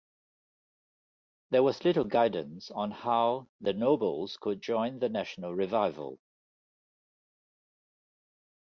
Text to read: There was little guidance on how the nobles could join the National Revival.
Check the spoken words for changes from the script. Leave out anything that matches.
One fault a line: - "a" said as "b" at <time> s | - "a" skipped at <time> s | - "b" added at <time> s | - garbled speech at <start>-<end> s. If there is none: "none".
none